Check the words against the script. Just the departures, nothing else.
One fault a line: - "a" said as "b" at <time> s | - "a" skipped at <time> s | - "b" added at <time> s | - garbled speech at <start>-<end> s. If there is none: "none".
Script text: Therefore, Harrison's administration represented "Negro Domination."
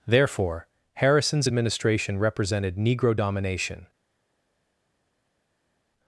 none